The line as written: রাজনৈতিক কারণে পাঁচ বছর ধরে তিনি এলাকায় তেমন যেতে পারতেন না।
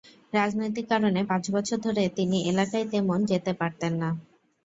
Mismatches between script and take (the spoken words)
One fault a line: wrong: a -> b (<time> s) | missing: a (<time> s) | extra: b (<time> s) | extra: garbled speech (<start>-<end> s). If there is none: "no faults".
no faults